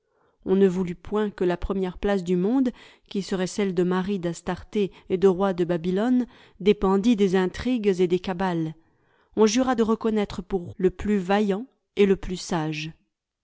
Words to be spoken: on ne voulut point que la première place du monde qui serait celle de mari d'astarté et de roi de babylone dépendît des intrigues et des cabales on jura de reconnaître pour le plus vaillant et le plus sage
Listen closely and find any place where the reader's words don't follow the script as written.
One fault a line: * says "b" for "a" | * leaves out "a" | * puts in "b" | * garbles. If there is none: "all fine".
all fine